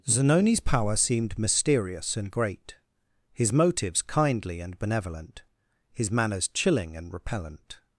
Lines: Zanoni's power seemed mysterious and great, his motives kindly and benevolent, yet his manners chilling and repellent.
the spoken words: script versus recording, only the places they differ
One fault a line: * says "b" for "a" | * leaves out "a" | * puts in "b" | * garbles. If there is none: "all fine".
* leaves out "yet"